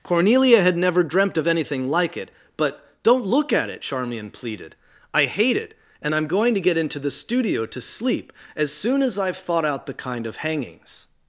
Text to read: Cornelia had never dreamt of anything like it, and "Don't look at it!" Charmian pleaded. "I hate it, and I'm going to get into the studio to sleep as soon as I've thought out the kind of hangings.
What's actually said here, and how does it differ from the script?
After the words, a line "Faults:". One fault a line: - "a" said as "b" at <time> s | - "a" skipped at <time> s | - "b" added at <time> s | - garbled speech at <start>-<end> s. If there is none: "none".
Cornelia had never dreamt of anything like it, but "Don't look at it!" Charmian pleaded. "I hate it, and I'm going to get into the studio to sleep as soon as I've thought out the kind of hangings.
Faults:
- "and" said as "but" at 2.6 s